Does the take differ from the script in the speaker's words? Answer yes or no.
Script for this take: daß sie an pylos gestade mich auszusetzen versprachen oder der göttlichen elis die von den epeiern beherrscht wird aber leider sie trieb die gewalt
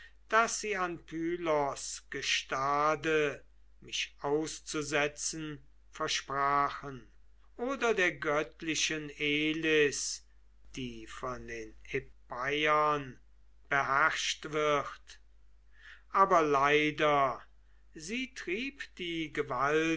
no